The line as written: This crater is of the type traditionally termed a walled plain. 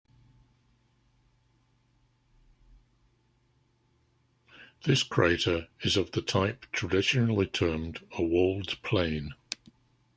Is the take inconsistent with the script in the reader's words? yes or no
no